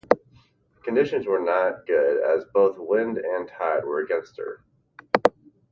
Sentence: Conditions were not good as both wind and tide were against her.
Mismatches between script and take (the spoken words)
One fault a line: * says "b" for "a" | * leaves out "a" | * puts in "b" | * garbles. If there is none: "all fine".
all fine